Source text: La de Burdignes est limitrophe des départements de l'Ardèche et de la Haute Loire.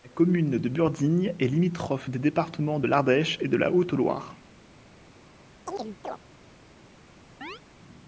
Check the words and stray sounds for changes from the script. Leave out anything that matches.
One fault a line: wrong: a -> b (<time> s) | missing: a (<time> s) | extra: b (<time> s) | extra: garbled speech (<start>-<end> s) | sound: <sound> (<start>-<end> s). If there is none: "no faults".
extra: commune (0.1 s)
sound: chirp (5.7-6.2 s)
sound: chirp (7.4-7.6 s)